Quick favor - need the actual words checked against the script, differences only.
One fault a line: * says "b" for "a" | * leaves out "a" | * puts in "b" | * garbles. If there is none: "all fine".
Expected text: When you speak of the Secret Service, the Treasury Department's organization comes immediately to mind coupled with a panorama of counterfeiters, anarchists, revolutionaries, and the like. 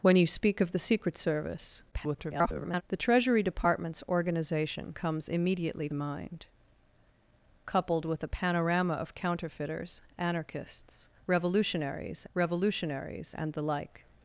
* garbles
* leaves out "to"
* puts in "revolutionaries"